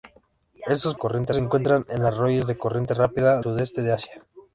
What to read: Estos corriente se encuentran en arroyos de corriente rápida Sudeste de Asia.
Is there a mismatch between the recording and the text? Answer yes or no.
no